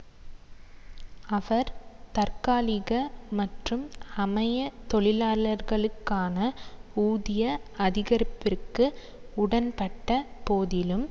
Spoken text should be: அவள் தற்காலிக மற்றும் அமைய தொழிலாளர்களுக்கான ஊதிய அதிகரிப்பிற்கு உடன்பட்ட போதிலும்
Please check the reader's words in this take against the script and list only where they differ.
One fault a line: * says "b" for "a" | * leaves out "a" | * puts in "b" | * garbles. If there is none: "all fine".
* says "அவர்" for "அவள்"